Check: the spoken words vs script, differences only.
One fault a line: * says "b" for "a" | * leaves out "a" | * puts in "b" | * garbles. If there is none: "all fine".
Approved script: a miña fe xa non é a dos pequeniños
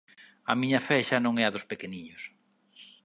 all fine